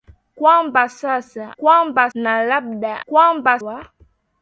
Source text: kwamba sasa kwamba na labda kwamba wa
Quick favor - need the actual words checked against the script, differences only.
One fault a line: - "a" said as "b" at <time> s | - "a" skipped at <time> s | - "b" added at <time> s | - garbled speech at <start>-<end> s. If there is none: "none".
none